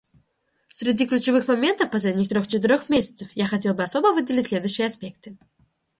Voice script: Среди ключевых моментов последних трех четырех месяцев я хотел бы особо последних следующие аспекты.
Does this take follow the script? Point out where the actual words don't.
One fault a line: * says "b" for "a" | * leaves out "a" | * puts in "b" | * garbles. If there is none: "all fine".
* says "выделить" for "последних"